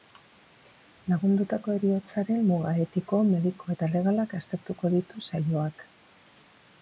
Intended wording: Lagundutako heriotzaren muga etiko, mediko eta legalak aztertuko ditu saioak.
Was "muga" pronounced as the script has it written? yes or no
yes